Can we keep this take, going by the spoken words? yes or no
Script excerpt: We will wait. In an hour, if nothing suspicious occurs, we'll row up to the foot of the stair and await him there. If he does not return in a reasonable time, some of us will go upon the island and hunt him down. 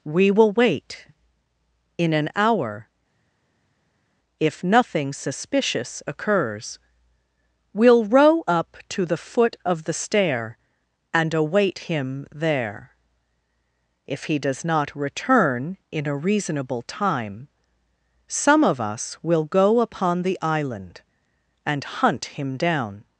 yes